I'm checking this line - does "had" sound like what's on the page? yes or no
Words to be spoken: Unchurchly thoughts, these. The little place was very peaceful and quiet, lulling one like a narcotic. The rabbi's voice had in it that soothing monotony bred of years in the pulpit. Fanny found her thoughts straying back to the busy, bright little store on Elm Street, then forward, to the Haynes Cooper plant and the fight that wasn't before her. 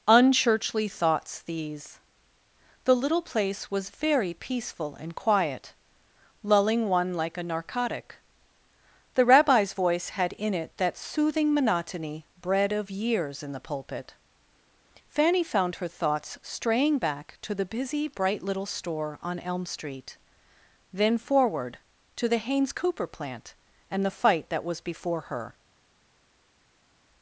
yes